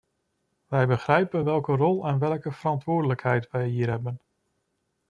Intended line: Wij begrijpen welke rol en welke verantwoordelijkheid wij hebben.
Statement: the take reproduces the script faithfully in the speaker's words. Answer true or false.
false